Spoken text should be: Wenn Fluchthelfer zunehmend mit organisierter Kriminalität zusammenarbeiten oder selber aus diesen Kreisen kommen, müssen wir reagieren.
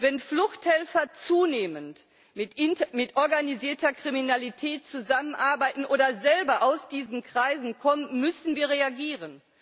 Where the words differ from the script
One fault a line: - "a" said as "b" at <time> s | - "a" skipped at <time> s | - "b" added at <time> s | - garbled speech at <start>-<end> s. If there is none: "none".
none